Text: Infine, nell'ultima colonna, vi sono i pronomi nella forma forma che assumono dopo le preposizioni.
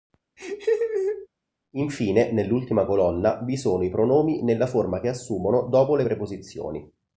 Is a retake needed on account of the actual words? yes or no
yes